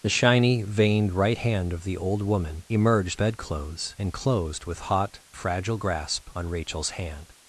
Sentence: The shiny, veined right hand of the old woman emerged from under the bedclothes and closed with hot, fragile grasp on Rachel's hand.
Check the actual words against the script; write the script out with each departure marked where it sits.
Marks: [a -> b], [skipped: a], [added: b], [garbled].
The shiny, veined right hand of the old woman emerged [skipped: from under the] bedclothes and closed with hot, fragile grasp on Rachel's hand.